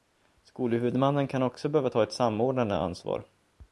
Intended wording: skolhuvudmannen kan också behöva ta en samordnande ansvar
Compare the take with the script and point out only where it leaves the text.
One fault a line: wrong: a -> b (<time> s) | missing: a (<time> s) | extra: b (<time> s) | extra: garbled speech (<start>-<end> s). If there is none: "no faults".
wrong: en -> ett (2.0 s)